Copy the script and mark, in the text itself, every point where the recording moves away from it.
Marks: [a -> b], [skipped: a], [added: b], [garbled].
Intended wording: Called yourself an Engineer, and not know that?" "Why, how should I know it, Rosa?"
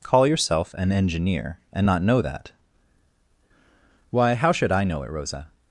[Called -> Call] yourself an Engineer, and not know that?" "Why, how should I know it, Rosa?"